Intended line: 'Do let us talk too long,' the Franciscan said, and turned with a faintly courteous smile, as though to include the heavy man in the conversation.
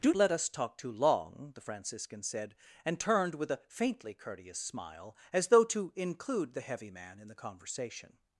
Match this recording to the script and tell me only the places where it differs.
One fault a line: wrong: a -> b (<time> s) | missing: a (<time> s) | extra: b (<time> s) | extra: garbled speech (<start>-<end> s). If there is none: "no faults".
no faults